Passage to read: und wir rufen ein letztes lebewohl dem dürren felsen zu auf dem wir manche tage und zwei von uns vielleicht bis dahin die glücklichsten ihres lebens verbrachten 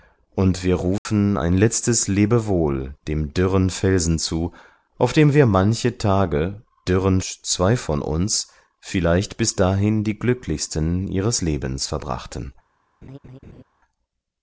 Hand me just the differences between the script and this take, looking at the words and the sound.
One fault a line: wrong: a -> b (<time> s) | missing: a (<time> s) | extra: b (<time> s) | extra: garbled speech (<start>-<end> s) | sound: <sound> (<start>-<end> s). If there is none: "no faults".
sound: dropout (1.0-1.1 s)
wrong: und -> dürren (6.9 s)
sound: laugh (13.0-13.6 s)